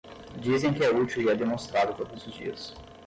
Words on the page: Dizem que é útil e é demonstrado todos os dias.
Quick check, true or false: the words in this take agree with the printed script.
true